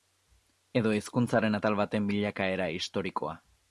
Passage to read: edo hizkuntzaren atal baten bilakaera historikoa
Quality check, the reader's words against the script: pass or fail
pass